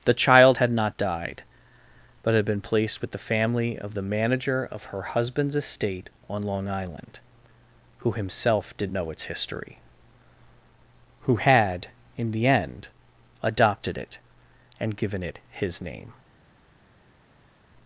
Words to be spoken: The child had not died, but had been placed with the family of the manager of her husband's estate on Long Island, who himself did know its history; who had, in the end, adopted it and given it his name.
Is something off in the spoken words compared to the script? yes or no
no